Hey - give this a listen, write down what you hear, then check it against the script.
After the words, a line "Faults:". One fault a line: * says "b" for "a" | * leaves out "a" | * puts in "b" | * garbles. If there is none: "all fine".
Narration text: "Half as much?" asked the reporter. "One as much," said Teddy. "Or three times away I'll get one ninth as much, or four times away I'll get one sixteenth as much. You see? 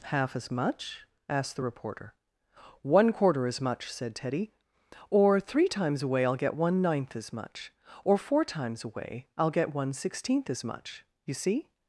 "Half as much?" asked the reporter. "One quarter as much," said Teddy. "Or three times away I'll get one ninth as much, or four times away I'll get one sixteenth as much. You see?
Faults:
* puts in "quarter"